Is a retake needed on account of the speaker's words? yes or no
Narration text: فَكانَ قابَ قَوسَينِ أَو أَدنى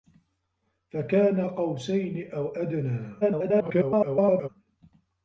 yes